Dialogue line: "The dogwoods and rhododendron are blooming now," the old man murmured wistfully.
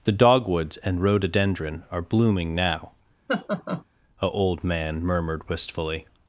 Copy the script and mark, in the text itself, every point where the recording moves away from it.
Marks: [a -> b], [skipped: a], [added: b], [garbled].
"The dogwoods and rhododendron are blooming now," [the -> a] old man murmured wistfully.